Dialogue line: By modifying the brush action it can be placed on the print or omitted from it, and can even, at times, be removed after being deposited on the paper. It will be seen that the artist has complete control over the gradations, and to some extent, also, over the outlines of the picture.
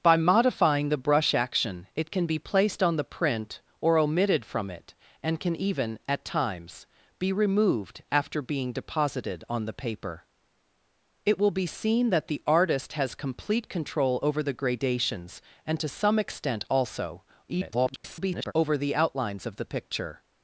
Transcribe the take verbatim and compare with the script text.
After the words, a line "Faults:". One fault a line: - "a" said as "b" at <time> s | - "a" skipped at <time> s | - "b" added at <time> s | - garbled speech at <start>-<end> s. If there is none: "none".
By modifying the brush action it can be placed on the print or omitted from it, and can even, at times, be removed after being deposited on the paper. It will be seen that the artist has complete control over the gradations, and to some extent, also, [garbled] over the outlines of the picture.
Faults:
- garbled speech at 17.5-18.5 s